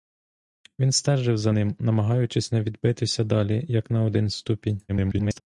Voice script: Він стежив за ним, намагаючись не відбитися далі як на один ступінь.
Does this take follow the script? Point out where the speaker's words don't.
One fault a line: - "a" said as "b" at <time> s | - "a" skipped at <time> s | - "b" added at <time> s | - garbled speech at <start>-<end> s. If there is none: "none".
- garbled speech at 4.9-5.4 s